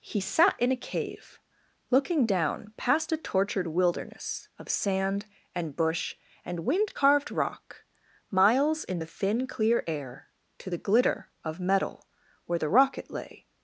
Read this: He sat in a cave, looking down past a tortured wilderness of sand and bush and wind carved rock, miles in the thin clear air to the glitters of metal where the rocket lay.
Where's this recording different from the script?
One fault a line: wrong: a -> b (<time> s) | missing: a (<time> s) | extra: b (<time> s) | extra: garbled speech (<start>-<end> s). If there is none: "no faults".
wrong: glitters -> glitter (10.8 s)